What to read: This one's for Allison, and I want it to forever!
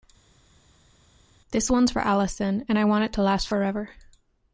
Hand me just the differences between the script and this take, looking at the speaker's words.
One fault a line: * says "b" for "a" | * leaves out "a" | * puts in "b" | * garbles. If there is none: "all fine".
* puts in "last"